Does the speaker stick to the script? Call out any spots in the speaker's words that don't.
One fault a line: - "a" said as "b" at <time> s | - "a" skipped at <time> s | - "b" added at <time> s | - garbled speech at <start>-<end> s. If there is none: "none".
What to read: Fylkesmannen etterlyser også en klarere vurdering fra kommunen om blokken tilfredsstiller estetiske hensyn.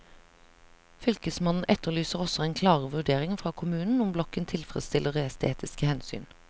none